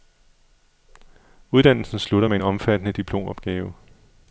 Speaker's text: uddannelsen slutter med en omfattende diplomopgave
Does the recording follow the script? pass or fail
pass